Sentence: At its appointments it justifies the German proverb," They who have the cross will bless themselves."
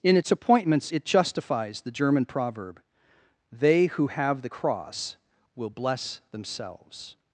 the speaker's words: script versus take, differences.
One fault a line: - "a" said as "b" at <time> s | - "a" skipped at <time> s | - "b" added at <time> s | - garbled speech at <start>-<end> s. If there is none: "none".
- "At" said as "In" at 0.0 s